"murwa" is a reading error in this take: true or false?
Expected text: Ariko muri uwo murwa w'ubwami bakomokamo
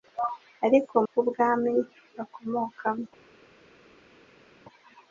true